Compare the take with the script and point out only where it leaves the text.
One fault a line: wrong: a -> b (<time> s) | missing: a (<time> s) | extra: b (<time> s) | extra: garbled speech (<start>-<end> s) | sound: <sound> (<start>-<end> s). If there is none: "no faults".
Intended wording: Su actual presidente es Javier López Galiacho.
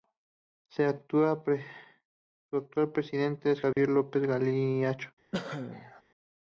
sound: dropout (3.7-3.8 s)
sound: cough (5.3-6.0 s)